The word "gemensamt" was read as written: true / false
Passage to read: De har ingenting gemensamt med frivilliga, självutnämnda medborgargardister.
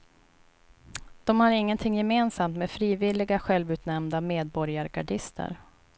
true